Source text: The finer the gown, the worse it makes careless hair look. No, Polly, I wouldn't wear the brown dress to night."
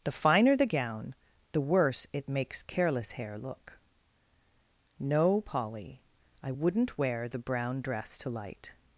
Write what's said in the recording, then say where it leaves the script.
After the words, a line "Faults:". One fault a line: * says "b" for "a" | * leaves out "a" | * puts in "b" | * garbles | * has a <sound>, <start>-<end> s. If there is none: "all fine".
The finer the gown, the worse it makes careless hair look. No, Polly, I wouldn't wear the brown dress to light."
Faults:
* says "light" for "night"